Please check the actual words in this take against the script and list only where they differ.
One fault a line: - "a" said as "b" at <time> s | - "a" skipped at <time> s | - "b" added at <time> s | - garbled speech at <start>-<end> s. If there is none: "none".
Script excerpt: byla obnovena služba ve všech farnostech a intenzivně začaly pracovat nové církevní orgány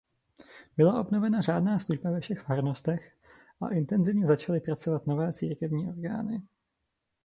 - "řádná" added at 1.4 s